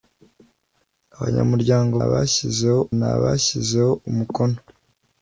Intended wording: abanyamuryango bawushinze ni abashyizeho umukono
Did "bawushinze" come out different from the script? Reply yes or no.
yes